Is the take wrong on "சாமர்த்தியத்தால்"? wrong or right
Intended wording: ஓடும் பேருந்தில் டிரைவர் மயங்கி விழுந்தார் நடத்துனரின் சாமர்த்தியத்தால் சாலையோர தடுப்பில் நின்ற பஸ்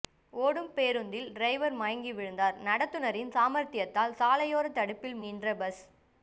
right